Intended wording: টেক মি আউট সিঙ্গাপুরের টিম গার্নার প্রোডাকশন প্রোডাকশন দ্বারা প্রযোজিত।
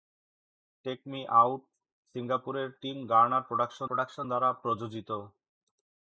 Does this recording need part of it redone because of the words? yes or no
no